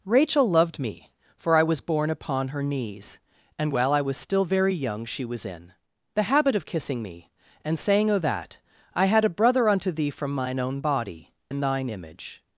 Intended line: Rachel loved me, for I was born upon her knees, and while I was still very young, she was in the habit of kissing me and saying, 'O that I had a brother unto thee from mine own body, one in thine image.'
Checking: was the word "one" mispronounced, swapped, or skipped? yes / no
yes